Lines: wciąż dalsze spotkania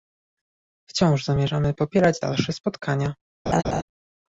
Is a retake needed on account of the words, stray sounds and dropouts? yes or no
yes